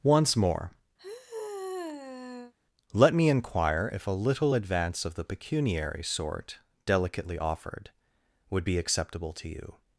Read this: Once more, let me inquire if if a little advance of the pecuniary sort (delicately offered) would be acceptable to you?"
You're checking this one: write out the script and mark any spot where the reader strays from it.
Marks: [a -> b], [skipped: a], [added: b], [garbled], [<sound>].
Once more, [sigh] let me inquire if [skipped: if] a little advance of the pecuniary sort (delicately offered) would be acceptable to you?"